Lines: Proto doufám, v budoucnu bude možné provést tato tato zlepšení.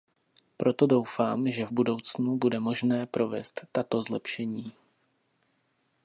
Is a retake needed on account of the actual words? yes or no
yes